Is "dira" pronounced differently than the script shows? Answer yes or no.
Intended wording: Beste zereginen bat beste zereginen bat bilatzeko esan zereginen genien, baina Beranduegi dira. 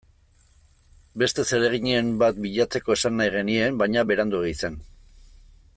yes